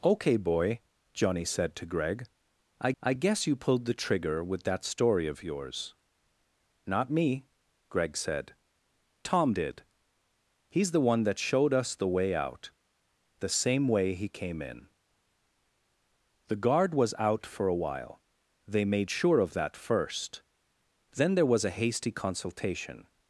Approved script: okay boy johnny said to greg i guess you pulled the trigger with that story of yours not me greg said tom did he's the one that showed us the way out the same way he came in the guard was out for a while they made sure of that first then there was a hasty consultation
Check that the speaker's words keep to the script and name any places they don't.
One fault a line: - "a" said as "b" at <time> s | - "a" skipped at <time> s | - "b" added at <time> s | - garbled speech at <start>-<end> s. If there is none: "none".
- "i" added at 3.0 s